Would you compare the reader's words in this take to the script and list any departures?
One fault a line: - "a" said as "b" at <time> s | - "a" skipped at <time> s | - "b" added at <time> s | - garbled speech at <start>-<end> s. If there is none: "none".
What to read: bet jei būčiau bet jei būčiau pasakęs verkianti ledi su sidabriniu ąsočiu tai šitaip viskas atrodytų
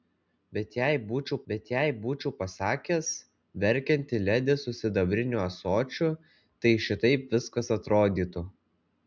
none